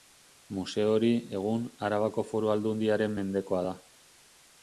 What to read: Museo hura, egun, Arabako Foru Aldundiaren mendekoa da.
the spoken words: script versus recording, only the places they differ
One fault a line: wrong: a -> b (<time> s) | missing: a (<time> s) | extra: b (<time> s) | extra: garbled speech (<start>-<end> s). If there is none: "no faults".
wrong: hura -> hori (0.9 s)